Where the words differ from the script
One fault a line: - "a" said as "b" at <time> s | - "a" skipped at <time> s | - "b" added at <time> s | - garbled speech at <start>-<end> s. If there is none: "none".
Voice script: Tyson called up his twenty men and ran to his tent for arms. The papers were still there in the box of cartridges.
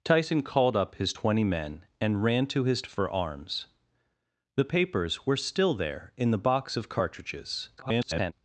- "tent" skipped at 2.8 s
- garbled speech at 7.8-8.3 s